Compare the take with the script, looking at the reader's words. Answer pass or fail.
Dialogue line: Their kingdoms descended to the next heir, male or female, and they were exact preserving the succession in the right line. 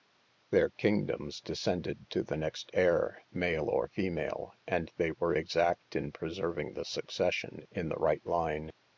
fail